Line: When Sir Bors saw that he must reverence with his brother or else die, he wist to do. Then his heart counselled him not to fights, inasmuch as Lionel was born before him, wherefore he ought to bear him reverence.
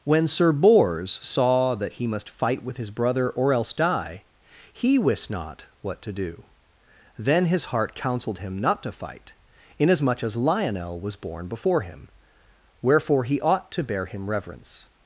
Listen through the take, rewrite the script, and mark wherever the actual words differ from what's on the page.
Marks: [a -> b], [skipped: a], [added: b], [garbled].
When Sir Bors saw that he must [reverence -> fight] with his brother or else die, he wist [added: not what] to do. Then his heart counselled him not to [fights, -> fight] inasmuch as Lionel was born before him, wherefore he ought to bear him reverence.